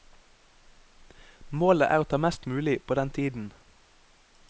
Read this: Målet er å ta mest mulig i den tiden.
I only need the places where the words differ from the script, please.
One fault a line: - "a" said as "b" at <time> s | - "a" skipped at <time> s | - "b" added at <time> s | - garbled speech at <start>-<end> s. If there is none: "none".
- "i" said as "på" at 2.9 s